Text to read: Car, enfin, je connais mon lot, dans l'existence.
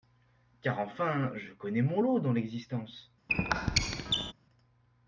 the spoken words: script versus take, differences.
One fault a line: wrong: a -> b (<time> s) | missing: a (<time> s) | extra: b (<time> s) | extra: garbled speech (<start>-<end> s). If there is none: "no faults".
no faults